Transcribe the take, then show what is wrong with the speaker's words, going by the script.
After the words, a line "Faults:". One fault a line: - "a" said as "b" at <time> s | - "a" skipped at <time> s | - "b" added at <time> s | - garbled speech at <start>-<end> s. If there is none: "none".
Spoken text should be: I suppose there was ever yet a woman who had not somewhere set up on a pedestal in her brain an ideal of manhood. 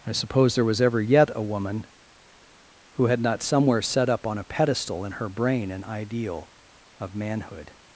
I suppose there was ever yet a woman who had not somewhere set up on a pedestal in her brain an ideal of manhood.
Faults:
none